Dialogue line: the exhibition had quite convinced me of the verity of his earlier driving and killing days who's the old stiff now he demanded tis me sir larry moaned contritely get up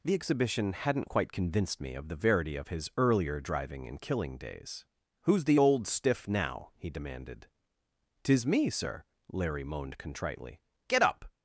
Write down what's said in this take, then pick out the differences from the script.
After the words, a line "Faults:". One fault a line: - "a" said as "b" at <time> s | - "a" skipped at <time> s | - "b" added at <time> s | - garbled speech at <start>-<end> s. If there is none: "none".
the exhibition hadn't quite convinced me of the verity of his earlier driving and killing days who's the old stiff now he demanded tis me sir larry moaned contritely get up
Faults:
- "had" said as "hadn't" at 0.7 s